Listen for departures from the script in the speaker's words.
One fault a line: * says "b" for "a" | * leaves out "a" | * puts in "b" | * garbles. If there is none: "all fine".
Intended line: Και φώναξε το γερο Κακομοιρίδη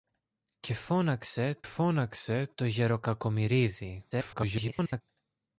* puts in "φώναξε"
* garbles